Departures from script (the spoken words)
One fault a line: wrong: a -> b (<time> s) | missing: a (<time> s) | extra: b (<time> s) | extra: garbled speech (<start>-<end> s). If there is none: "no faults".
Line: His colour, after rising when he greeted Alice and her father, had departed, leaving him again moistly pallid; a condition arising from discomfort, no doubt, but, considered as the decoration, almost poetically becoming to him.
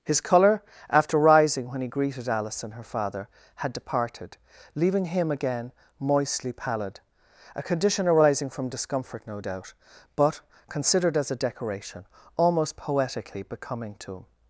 wrong: the -> a (11.3 s)